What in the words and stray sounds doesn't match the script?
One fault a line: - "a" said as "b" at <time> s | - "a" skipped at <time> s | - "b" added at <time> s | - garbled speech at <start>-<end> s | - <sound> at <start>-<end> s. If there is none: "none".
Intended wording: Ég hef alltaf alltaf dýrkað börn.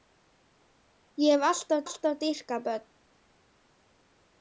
none